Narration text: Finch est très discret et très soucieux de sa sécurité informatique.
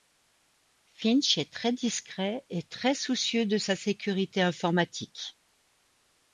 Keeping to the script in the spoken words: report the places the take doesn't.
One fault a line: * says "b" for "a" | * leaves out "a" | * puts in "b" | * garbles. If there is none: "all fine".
all fine